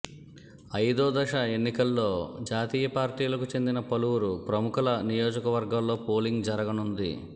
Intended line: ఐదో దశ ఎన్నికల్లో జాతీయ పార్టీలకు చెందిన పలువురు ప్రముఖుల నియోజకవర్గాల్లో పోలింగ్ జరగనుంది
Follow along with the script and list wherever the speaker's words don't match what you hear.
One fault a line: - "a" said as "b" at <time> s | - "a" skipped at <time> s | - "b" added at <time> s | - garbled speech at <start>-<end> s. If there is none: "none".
none